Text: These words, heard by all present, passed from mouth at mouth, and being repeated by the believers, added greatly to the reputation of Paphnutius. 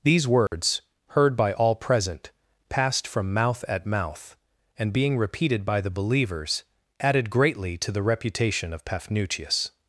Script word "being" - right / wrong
right